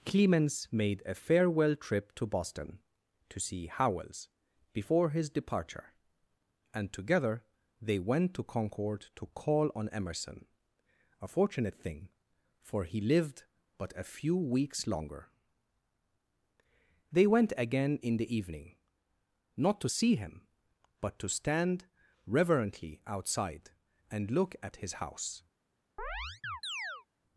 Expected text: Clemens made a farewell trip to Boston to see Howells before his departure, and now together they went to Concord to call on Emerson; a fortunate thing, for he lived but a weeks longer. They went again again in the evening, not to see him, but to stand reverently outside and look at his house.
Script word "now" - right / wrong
wrong